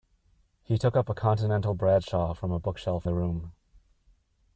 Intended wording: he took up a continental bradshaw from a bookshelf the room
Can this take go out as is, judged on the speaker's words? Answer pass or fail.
pass